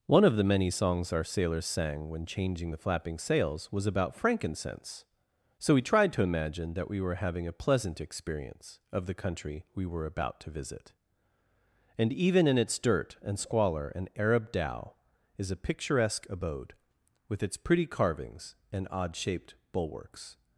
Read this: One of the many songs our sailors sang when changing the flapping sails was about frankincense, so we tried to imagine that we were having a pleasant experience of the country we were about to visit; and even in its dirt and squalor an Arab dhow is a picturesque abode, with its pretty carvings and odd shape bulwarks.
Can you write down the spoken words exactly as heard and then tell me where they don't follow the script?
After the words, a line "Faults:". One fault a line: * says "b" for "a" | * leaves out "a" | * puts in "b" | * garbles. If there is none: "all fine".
One of the many songs our sailors sang when changing the flapping sails was about frankincense, so we tried to imagine that we were having a pleasant experience of the country we were about to visit; and even in its dirt and squalor an Arab dhow is a picturesque abode, with its pretty carvings and odd shaped bulwarks.
Faults:
* says "shaped" for "shape"